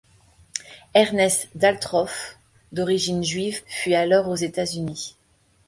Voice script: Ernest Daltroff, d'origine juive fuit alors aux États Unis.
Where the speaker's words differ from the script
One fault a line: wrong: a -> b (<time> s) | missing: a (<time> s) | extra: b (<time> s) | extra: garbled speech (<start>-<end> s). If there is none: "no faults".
no faults